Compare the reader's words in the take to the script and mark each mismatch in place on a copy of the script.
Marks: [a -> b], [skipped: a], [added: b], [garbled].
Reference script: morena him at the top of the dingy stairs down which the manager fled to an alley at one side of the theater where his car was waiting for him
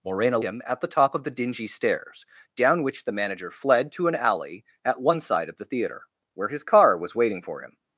morena him at the top of the dingy stairs down which the manager fled to an alley at one side of the theater where his car was waiting for him